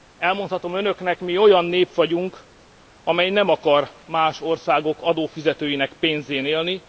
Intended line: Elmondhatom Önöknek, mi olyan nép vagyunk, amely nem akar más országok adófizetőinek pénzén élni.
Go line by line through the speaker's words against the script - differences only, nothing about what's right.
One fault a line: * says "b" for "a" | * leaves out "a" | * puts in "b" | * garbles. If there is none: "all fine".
all fine